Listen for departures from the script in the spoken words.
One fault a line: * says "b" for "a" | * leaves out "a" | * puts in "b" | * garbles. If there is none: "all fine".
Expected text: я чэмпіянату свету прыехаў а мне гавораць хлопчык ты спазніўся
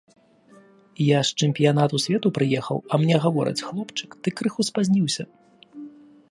* puts in "з"
* puts in "крыху"